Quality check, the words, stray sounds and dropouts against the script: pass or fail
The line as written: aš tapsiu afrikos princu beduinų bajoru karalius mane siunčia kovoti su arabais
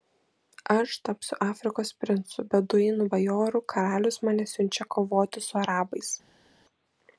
pass